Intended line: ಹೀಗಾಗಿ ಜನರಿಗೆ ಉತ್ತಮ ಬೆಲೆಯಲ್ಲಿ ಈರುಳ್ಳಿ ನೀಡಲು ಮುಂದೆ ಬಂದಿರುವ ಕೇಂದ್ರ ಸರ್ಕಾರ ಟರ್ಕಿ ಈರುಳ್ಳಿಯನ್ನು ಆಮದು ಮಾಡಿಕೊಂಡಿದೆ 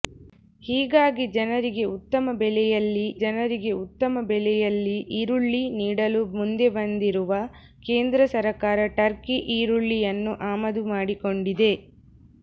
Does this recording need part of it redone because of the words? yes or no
yes